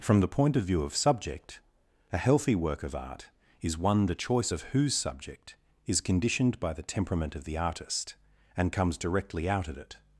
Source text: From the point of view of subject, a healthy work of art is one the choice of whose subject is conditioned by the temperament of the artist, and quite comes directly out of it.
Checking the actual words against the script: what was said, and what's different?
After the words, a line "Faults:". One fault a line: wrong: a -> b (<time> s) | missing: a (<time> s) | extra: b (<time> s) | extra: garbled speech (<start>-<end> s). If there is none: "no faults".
From the point of view of subject, a healthy work of art is one the choice of whose subject is conditioned by the temperament of the artist, and comes directly out of it.
Faults:
missing: quite (8.7 s)